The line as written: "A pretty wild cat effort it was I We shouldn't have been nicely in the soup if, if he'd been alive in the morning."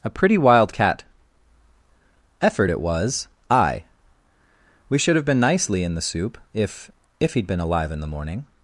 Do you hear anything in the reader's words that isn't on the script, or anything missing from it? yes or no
yes